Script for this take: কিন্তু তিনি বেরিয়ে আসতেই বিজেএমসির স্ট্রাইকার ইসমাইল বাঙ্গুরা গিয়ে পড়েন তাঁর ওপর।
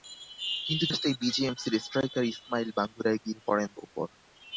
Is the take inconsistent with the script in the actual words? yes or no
yes